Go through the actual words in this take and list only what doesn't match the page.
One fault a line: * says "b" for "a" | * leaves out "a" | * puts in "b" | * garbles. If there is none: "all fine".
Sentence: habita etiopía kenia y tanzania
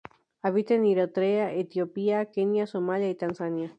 * puts in "en eritrea"
* puts in "somalia"